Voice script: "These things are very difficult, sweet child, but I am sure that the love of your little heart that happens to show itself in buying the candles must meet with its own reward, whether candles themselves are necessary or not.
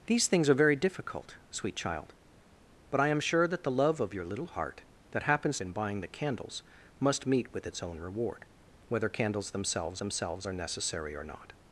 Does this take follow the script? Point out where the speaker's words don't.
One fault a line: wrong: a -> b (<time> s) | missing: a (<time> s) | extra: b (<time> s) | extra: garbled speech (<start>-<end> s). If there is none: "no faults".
missing: to show itself (5.6 s)
extra: themselves (10.0 s)